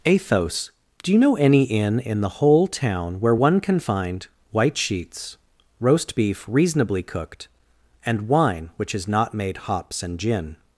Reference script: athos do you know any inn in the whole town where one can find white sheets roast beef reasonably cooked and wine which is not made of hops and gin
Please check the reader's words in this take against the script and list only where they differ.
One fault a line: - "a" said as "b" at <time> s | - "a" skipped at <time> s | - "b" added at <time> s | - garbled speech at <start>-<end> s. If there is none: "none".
- "of" skipped at 9.6 s